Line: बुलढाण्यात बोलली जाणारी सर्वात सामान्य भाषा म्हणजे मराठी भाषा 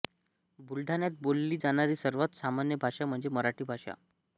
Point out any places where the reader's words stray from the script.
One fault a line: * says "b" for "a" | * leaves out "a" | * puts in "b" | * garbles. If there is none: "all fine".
all fine